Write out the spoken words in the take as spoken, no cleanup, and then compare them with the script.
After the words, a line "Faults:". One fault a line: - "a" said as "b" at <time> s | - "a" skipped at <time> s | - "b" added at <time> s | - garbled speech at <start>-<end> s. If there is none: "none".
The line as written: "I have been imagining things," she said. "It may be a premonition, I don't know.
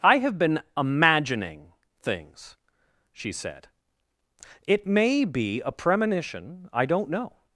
"I have been imagining things," she said. "It may be a premonition, I don't know.
Faults:
none